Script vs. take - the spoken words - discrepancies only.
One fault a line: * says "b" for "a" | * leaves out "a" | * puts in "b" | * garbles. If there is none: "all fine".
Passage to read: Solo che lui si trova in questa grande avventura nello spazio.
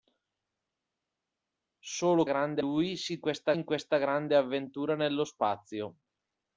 * says "grande" for "che"
* says "questa" for "trova"